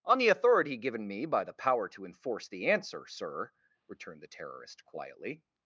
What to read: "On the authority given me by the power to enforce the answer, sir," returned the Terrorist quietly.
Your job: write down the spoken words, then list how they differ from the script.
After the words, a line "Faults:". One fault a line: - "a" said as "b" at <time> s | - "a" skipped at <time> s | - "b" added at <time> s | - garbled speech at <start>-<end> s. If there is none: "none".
"On the authority given me by the power to enforce the answer, sir," returned the Terrorist quietly.
Faults:
none